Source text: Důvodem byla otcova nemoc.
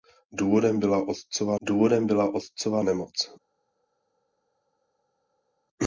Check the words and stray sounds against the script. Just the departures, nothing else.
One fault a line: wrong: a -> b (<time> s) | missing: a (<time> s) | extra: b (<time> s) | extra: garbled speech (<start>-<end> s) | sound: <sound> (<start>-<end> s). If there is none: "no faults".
extra: důvodem byla otcova (1.6 s)